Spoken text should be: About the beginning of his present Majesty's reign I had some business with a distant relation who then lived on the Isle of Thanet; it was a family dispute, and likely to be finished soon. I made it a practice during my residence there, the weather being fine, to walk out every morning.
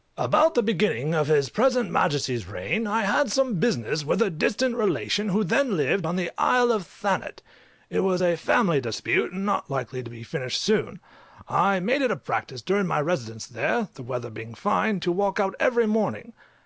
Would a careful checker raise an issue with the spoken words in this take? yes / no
yes